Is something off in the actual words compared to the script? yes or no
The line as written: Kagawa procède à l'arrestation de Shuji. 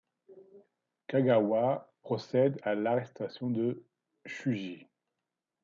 no